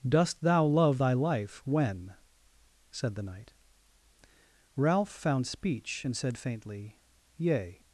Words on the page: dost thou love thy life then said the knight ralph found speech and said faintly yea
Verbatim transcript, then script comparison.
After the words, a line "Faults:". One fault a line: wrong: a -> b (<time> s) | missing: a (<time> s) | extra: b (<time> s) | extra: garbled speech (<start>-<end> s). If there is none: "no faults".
dost thou love thy life when said the knight ralph found speech and said faintly yea
Faults:
wrong: then -> when (1.6 s)